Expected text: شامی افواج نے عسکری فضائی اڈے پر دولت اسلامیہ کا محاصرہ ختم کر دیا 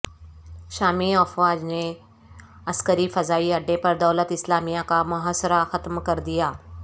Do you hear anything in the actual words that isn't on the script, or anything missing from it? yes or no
no